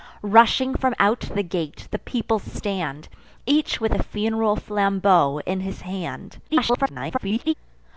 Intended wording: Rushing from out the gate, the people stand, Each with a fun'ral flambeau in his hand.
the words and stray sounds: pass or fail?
fail